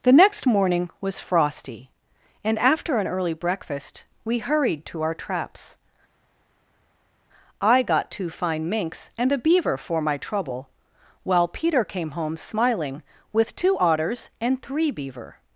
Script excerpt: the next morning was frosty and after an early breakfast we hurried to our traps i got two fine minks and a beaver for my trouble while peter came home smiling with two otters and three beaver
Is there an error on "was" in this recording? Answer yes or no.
no